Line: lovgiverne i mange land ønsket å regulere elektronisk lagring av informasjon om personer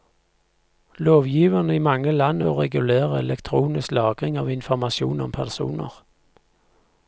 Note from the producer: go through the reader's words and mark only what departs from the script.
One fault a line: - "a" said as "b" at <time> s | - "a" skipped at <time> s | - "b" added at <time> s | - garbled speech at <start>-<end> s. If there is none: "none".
- "ønsket" skipped at 2.4 s